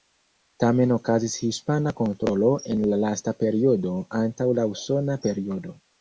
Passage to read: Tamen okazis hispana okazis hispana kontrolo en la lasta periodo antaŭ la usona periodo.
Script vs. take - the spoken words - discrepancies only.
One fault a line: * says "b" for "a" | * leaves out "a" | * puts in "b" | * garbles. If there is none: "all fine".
* leaves out "okazis hispana"